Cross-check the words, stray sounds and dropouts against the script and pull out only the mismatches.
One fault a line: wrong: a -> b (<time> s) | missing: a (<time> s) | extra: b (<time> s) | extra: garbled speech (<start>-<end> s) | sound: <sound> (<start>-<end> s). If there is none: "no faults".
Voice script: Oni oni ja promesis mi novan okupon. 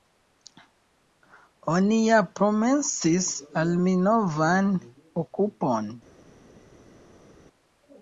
missing: oni (2.0 s)
extra: al (3.6 s)